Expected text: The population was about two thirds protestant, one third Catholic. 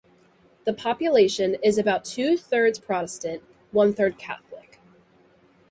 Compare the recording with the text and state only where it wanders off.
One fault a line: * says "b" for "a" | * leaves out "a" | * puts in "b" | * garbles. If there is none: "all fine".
* says "is" for "was"